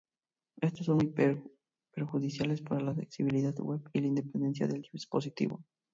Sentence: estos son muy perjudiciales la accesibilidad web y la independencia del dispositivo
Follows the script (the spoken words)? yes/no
no